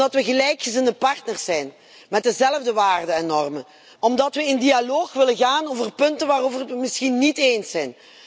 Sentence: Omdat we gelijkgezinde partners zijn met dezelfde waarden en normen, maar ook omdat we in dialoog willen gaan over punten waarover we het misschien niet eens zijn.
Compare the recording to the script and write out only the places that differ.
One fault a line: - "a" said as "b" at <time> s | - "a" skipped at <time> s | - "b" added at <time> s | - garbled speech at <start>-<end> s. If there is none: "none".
- "maar ook" skipped at 3.6 s